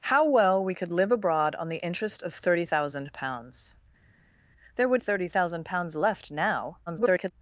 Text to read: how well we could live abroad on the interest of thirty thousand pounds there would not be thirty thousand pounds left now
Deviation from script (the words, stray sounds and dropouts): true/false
true